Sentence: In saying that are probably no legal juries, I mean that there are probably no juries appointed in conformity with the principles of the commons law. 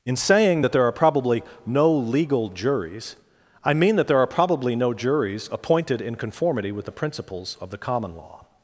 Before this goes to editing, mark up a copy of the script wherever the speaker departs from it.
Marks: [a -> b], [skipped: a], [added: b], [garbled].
In saying that [added: there] are probably no legal juries, I mean that there are probably no juries appointed in conformity with the principles of the [commons -> common] law.